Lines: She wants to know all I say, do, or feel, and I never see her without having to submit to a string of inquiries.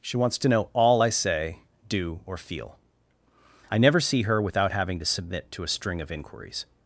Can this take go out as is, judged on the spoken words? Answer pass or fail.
fail